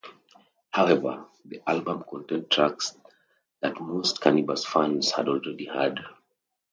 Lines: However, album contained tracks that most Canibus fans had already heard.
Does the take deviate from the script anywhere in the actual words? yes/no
yes